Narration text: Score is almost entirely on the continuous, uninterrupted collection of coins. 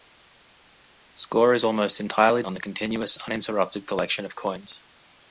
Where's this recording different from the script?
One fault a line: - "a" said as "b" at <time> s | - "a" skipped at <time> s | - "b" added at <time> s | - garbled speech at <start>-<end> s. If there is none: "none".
none